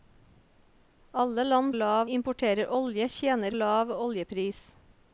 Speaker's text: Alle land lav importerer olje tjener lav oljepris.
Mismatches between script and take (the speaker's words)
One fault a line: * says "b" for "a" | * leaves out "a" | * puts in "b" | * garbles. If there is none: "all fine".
all fine